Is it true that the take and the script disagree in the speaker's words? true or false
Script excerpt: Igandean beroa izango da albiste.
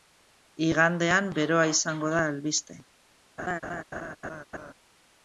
false